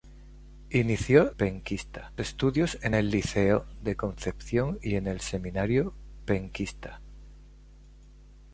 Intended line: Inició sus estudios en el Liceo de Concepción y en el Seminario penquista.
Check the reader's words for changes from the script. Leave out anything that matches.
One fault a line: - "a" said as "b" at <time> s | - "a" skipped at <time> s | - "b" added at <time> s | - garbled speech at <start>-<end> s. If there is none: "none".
- "sus" said as "penquista" at 1.4 s